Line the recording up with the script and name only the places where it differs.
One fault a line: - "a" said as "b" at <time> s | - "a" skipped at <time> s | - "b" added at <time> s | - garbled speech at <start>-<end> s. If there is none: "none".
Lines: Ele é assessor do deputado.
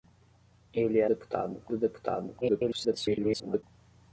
- "assessor" said as "deputado" at 1.0 s
- garbled speech at 2.4-3.6 s